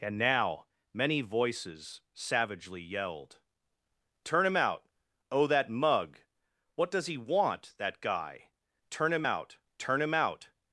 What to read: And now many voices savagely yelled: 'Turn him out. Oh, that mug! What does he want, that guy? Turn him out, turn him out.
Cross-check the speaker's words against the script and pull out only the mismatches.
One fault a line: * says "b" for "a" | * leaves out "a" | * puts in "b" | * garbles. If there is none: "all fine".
all fine